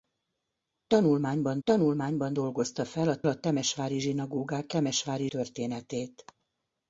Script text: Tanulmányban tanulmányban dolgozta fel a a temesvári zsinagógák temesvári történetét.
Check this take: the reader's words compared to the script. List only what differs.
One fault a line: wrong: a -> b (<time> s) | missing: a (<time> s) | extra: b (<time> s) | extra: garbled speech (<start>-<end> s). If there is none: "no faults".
no faults